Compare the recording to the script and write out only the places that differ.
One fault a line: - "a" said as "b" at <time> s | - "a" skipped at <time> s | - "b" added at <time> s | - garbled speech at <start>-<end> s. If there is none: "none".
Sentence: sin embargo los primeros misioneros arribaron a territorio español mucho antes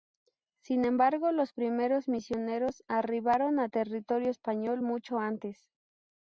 none